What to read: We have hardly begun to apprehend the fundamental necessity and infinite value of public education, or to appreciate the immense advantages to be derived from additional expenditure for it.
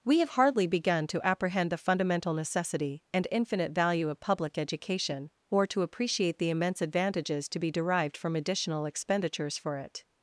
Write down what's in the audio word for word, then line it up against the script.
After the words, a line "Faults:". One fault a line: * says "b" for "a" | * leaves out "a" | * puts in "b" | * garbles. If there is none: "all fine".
We have hardly begun to apprehend the fundamental necessity and infinite value of public education, or to appreciate the immense advantages to be derived from additional expenditures for it.
Faults:
* says "expenditures" for "expenditure"